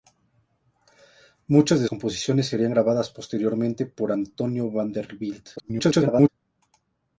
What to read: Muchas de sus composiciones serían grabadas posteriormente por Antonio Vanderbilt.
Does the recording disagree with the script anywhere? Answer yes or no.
yes